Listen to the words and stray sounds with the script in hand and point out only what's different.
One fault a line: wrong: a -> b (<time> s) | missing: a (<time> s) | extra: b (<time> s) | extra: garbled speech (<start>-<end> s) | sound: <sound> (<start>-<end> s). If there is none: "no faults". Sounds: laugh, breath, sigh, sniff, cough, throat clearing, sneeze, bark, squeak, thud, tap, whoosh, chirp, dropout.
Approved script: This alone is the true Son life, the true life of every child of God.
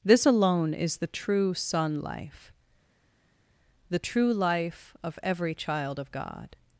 no faults